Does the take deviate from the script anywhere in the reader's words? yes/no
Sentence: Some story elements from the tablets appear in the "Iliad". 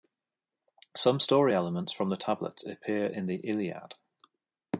no